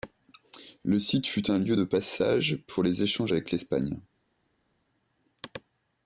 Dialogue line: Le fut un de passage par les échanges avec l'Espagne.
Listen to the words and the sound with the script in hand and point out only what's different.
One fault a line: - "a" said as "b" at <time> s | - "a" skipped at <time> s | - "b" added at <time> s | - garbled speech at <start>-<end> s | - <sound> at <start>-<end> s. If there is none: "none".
- "site" added at 1.0 s
- "lieu" added at 1.6 s
- "par" said as "pour" at 2.7 s